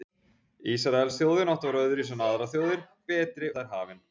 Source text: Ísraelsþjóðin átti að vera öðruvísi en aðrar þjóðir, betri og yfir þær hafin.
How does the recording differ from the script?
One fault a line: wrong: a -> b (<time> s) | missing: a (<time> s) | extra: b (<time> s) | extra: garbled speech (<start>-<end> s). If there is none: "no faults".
missing: og yfir (3.5 s)